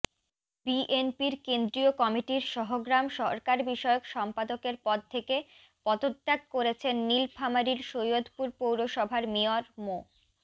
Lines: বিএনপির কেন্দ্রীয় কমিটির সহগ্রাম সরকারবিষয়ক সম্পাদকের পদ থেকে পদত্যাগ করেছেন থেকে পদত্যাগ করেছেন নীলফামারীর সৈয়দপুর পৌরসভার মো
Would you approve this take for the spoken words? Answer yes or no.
no